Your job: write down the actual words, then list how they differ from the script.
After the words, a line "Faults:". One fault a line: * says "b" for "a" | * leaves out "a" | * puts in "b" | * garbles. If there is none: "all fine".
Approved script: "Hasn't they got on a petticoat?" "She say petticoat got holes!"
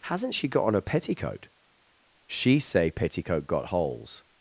"Hasn't she got on a petticoat?" "She say petticoat got holes!"
Faults:
* says "she" for "they"